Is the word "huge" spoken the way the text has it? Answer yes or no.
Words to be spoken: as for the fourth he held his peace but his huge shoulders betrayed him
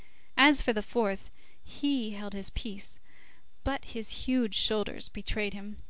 yes